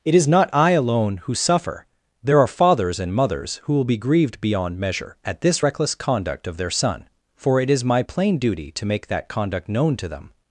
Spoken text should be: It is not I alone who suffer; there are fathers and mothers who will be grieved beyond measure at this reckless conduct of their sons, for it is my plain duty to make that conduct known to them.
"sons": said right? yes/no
no